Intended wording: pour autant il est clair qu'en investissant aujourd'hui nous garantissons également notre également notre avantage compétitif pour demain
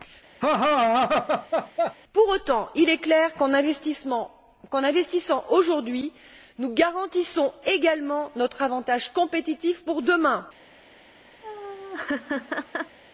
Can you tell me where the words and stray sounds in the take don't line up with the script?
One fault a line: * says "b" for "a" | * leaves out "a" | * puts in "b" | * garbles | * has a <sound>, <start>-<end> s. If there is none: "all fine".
* has a laugh, 0.4-2.0 s
* leaves out "également notre"
* has a laugh, 11.4-13.0 s